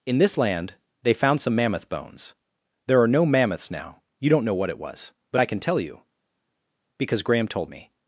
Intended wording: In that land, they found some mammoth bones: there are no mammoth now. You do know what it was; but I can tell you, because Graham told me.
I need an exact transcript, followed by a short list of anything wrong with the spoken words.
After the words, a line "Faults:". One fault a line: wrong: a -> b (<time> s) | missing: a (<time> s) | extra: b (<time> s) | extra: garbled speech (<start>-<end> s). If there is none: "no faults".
In this land, they found some mammoth bones: there are no mammoths now. You don't know what it was; but I can tell you, because Graham told me.
Faults:
wrong: that -> this (0.2 s)
wrong: mammoth -> mammoths (3.2 s)
wrong: do -> don't (4.3 s)